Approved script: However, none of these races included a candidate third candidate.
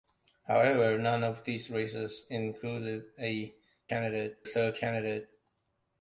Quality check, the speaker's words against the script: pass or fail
pass